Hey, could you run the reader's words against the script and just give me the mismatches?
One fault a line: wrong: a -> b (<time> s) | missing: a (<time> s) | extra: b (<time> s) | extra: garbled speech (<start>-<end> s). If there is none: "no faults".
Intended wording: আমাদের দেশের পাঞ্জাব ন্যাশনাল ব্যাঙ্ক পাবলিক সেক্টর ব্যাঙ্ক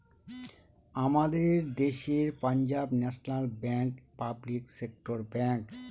no faults